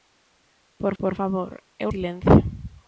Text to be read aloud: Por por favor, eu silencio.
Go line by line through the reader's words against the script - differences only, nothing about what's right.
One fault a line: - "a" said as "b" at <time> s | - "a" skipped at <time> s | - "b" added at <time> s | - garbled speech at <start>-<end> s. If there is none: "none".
none